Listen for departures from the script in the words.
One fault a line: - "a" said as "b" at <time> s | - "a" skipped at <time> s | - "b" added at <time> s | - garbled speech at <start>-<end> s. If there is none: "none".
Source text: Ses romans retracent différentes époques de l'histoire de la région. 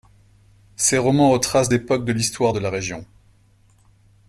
- "différentes" skipped at 1.7 s